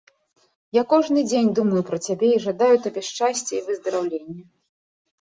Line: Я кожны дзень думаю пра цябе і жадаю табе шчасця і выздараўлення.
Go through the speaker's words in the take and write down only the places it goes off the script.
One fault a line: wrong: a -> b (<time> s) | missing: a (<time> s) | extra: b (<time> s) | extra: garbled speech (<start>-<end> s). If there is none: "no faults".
no faults